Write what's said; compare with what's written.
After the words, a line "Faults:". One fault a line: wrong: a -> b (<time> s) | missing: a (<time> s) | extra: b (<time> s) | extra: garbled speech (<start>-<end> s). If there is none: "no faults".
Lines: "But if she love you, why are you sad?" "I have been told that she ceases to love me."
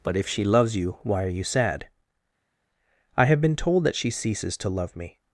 "But if she loves you, why are you sad?" "I have been told that she ceases to love me."
Faults:
wrong: love -> loves (0.4 s)